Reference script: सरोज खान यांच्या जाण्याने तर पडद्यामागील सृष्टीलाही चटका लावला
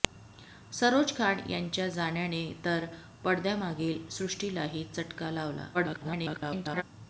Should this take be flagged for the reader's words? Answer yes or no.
yes